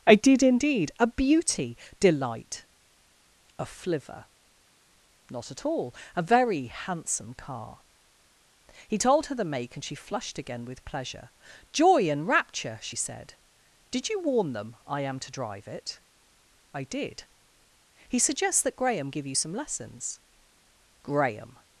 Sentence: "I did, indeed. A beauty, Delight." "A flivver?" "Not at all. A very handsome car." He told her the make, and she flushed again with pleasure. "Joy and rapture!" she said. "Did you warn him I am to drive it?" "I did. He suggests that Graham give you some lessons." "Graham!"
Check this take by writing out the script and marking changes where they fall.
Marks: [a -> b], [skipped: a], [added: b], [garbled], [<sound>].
"I did, indeed. A beauty, Delight." "A flivver?" "Not at all. A very handsome car." He told her the make, and she flushed again with pleasure. "Joy and rapture!" she said. "Did you warn [him -> them] I am to drive it?" "I did. He suggests that Graham give you some lessons." "Graham!"